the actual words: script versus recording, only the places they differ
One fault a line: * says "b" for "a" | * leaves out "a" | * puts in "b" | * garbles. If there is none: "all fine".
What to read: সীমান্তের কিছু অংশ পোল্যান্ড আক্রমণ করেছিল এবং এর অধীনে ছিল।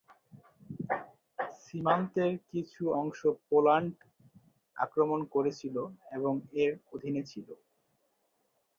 all fine